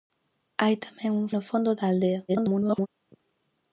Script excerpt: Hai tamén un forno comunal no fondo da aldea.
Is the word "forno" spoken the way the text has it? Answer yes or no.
no